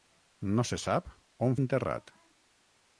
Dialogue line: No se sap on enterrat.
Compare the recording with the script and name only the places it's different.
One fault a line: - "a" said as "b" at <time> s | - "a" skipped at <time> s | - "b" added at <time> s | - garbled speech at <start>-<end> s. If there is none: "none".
none